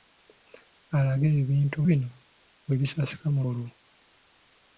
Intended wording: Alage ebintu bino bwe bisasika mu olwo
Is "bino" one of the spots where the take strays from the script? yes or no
no